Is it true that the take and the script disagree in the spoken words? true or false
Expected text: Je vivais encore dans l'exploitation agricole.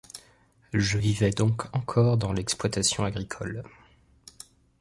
true